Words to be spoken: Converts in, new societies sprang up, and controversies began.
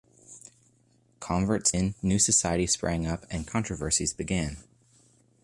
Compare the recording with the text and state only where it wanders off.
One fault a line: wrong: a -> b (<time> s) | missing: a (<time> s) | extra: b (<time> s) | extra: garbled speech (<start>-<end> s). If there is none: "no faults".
no faults